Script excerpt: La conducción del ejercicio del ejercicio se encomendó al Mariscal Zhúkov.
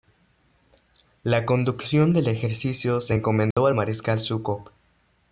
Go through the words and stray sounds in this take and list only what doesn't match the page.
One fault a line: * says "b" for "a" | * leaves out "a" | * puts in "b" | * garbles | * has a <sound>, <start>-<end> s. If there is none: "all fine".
* leaves out "del ejercicio"
* has a dropout, 3.5-3.6 s